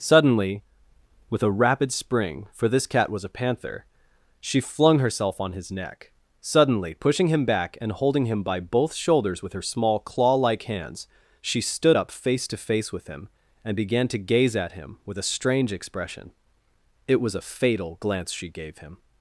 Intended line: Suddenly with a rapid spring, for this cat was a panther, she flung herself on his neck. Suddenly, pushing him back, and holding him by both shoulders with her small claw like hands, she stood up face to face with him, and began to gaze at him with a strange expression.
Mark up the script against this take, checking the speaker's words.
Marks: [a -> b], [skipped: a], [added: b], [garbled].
Suddenly with a rapid spring, for this cat was a panther, she flung herself on his neck. Suddenly, pushing him back, and holding him by both shoulders with her small claw like hands, she stood up face to face with him, and began to gaze at him with a strange expression. [added: It was a fatal glance she gave him]